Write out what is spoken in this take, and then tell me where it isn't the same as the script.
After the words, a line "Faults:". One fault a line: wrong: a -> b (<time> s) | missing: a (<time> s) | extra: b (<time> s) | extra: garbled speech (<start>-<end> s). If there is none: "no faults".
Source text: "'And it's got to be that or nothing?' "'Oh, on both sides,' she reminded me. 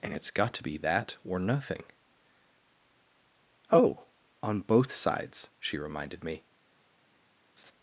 "'And it's got to be that or nothing?' "'Oh, on both sides,' she reminded me.
Faults:
no faults